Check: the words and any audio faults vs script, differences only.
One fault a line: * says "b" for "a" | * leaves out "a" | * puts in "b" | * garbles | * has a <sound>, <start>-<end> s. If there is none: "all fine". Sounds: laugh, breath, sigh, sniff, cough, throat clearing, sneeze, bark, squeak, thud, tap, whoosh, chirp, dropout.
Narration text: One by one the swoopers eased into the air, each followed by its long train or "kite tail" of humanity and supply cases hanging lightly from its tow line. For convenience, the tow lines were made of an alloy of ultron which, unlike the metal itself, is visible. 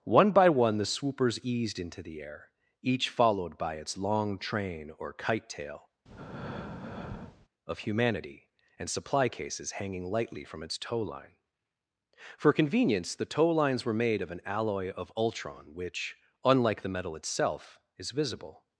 * has a breath, 6.1-7.5 s